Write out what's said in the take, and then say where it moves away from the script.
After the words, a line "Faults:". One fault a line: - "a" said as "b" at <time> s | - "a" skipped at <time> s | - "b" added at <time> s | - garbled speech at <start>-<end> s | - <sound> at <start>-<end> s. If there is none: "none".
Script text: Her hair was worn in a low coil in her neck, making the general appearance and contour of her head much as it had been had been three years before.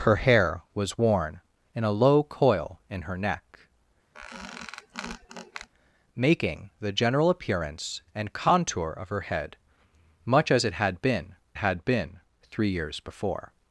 Her hair was worn in a low coil in her neck, making the general appearance and contour of her head much as it had been had been three years before.
Faults:
- squeak at 4.1-5.7 s